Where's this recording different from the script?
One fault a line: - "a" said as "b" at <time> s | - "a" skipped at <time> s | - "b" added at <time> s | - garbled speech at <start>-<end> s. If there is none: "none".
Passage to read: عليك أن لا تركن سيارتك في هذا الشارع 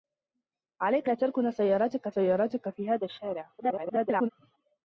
- "أن" skipped at 1.1 s
- "سيارتك" added at 2.1 s
- garbled speech at 3.6-4.3 s